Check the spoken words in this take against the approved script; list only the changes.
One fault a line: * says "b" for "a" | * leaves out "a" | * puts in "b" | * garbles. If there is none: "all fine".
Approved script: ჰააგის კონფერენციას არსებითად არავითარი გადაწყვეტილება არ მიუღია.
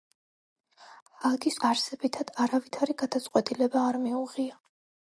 * leaves out "კონფერენციას"